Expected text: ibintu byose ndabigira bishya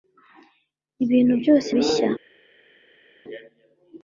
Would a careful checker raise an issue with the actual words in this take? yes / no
yes